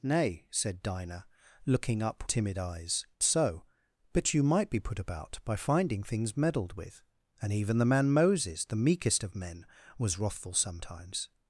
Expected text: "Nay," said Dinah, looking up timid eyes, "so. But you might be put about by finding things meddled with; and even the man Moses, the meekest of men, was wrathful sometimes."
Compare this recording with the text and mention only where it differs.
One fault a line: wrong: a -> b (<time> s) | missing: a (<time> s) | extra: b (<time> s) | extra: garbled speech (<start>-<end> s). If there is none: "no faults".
no faults